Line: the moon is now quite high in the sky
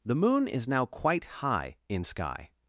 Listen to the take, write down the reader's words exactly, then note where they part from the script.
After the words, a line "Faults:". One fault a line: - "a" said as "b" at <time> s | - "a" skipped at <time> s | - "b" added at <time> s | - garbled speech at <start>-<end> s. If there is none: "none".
the moon is now quite high in sky
Faults:
- "the" skipped at 2.0 s